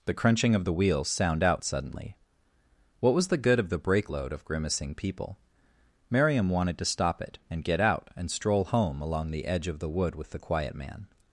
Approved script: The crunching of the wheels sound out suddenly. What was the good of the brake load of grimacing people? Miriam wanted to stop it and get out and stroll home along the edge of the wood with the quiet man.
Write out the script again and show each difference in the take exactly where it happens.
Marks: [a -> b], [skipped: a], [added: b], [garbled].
The crunching of the wheels sound out suddenly. What was the good of the brake load of grimacing people? Miriam wanted to stop it and get out and stroll home along the edge of the wood with the quiet man.